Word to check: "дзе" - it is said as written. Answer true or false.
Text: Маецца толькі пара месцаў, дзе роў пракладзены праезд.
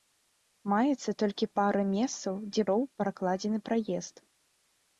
true